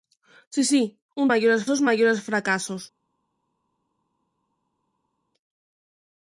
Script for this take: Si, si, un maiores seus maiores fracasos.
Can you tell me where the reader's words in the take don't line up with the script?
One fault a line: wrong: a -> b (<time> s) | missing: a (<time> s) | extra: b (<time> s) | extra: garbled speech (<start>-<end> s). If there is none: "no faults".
no faults